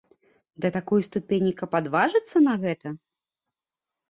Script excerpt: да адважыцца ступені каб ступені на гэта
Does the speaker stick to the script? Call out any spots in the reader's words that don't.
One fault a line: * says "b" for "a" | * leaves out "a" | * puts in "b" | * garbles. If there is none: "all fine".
* says "такой" for "адважыцца"
* says "адважыцца" for "ступені"